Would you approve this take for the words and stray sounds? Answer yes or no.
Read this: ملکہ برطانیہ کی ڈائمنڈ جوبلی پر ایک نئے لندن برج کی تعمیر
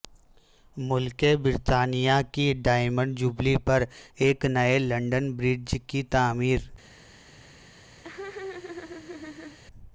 no